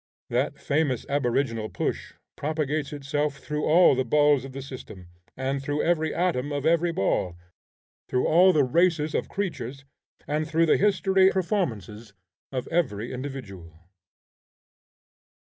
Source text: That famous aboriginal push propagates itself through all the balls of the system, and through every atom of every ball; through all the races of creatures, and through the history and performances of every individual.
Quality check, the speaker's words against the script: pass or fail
fail